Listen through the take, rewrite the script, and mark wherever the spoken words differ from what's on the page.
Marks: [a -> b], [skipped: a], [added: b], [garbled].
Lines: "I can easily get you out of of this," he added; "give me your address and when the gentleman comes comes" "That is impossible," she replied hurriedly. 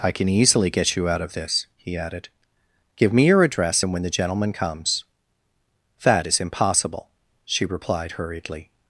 "I can easily get you out of [skipped: of] this," he added; "give me your address and when the gentleman comes [skipped: comes"] "That is impossible," she replied hurriedly.